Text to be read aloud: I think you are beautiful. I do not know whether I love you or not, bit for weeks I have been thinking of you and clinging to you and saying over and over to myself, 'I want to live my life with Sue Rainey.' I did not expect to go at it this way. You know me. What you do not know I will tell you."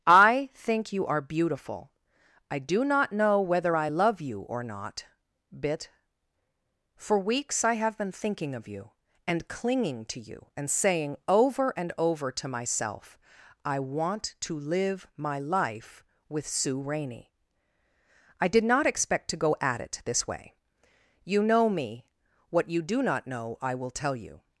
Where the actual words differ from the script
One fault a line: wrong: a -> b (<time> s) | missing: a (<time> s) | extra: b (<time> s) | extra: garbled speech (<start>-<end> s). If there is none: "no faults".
no faults